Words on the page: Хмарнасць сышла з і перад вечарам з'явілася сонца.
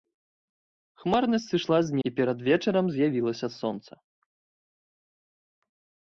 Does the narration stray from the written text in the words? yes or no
no